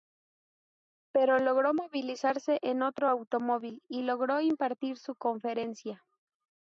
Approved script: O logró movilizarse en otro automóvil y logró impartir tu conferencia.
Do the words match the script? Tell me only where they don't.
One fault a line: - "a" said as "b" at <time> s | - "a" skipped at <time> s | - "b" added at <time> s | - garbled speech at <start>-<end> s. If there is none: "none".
- "O" said as "Pero" at 1.1 s
- "tu" said as "su" at 5.0 s